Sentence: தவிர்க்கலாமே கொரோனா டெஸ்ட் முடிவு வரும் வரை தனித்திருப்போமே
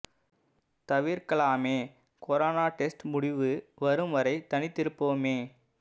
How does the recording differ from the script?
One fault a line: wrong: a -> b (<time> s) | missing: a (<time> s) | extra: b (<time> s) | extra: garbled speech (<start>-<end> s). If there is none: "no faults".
no faults